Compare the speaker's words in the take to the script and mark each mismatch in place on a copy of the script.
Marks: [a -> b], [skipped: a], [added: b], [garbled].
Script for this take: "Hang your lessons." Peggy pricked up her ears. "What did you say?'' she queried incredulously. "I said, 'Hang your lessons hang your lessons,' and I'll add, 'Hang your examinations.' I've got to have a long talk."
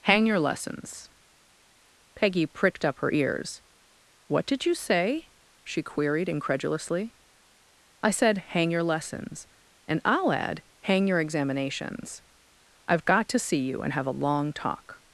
"Hang your lessons." Peggy pricked up her ears. "What did you say?'' she queried incredulously. "I said, 'Hang your lessons [skipped: hang your lessons,'] and I'll add, 'Hang your examinations.' I've got to [added: see you and] have a long talk."